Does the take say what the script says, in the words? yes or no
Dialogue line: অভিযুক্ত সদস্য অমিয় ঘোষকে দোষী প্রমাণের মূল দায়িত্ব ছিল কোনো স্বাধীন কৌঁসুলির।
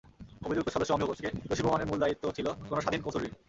yes